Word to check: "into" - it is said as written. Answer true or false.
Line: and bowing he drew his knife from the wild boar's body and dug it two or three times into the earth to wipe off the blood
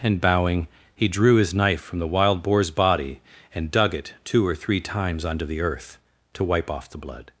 false